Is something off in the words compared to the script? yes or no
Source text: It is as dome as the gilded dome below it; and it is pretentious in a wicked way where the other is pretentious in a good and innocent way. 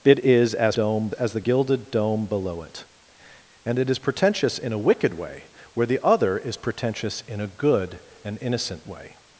no